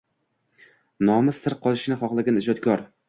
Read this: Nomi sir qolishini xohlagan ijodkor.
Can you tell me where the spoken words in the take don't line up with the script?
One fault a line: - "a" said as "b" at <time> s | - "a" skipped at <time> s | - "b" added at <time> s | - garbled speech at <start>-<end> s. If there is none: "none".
none